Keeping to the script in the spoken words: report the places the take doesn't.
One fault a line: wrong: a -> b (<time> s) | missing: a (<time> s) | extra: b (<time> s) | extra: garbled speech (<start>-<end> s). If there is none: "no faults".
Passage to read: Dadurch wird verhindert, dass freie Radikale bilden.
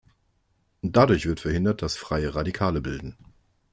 no faults